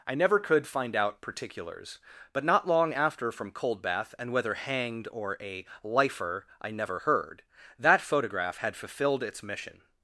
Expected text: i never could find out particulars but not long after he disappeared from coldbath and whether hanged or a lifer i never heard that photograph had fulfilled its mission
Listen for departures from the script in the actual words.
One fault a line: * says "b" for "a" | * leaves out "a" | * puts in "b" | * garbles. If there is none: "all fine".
* leaves out "he disappeared"